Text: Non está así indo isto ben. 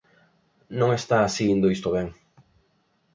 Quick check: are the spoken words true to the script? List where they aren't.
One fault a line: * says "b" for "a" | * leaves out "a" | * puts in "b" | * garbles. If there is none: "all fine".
all fine